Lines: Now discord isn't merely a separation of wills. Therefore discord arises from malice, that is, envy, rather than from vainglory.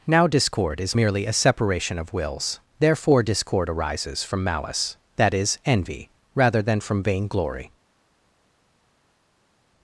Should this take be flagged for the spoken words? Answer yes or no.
yes